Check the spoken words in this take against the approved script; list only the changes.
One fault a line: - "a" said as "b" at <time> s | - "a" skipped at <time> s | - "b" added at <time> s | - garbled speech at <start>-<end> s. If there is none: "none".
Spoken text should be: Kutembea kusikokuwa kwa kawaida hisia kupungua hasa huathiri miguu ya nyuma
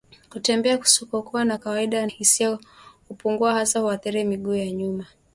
none